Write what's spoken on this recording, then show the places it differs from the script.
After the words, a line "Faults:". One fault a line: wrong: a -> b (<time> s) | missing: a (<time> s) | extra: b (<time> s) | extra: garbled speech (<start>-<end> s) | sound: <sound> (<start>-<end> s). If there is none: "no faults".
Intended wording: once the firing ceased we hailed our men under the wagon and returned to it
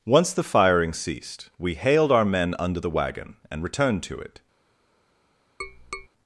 once the firing ceased we hailed our men under the wagon and returned to it
Faults:
sound: tap (5.6-6.1 s)